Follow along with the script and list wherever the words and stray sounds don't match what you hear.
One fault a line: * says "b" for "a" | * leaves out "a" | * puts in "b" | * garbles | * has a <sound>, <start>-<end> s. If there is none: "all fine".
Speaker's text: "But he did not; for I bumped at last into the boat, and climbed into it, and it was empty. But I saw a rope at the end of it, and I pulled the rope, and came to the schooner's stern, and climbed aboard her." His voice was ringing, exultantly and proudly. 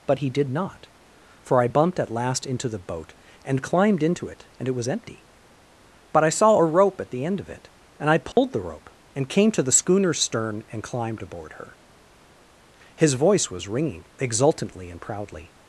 * has a dropout, 8.3-8.4 s